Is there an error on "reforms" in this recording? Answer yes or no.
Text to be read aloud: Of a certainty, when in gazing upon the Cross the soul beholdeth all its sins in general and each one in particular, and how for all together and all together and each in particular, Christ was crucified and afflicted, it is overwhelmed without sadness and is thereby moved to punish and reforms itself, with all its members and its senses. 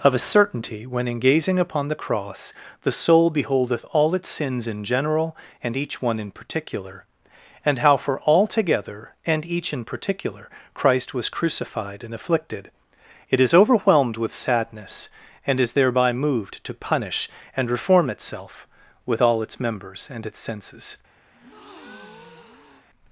yes